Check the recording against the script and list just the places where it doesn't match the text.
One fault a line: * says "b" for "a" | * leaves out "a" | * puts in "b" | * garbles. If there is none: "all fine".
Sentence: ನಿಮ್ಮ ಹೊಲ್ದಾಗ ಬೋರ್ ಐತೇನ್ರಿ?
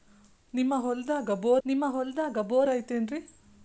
* puts in "ನಿಮ್ಮ ಹೊಲ್ದಾಗ ಬೋರ್"